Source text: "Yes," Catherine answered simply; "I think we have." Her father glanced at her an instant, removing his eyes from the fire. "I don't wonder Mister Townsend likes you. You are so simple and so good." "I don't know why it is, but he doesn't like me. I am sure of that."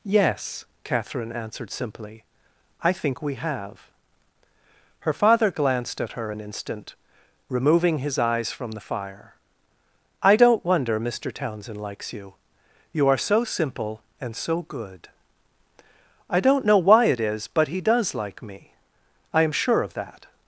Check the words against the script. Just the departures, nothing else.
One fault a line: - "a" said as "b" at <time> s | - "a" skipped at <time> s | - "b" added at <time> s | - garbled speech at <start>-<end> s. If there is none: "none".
- "doesn't" said as "does" at 17.8 s